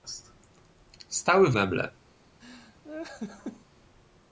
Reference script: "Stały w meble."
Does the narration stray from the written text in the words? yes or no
no